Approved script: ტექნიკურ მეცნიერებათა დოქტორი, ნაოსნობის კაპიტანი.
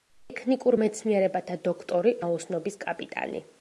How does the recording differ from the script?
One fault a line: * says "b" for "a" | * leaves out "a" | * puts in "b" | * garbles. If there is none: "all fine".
all fine